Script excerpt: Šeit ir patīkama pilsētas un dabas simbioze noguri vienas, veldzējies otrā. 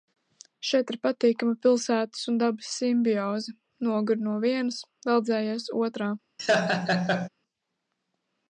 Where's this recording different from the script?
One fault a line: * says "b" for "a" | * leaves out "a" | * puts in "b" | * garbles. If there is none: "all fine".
* puts in "no"